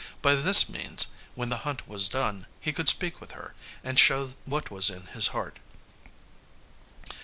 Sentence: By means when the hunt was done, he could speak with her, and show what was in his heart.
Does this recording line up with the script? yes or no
no